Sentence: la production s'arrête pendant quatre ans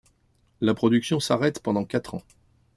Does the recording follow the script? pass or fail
pass